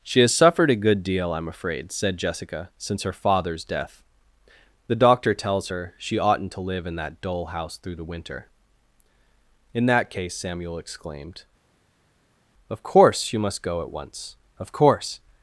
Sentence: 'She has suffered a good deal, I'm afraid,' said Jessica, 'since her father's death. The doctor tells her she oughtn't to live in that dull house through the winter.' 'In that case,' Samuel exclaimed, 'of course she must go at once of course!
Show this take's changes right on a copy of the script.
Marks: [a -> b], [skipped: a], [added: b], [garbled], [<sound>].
'She has suffered a good deal, I'm afraid,' said Jessica, 'since her father's death. The doctor tells her she oughtn't to live in that dull house through the winter.' 'In that case,' Samuel exclaimed, 'of course [she -> you] must go at once of course!